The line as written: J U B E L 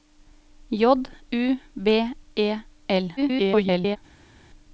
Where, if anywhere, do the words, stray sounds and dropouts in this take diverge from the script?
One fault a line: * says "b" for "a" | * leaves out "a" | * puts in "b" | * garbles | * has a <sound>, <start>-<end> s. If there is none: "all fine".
* garbles